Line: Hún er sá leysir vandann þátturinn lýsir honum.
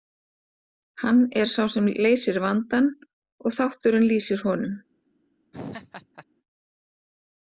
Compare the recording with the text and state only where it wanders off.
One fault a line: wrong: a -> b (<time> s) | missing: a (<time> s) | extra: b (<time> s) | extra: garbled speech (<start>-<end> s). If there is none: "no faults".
wrong: Hún -> Hann (1.0 s)
extra: sem (1.7 s)
extra: og (3.5 s)